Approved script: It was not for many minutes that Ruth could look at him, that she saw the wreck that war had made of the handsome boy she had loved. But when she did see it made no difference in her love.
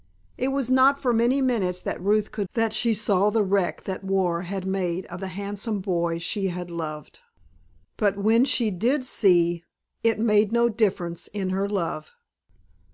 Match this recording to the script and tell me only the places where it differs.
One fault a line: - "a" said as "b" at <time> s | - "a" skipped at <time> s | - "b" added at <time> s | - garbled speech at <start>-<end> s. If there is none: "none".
- "look at him" skipped at 2.5 s